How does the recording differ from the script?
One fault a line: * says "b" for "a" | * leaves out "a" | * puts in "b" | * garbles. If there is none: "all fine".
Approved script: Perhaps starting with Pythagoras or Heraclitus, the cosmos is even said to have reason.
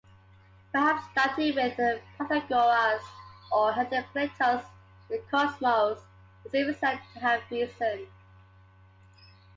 all fine